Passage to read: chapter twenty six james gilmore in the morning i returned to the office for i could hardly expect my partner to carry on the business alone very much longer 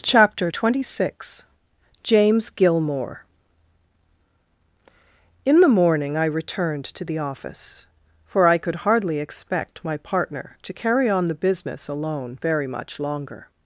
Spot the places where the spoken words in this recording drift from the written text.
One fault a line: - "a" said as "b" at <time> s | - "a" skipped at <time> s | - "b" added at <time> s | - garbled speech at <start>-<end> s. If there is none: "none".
none